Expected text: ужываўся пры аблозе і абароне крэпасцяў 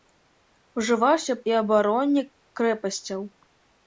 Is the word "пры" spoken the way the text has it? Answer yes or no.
no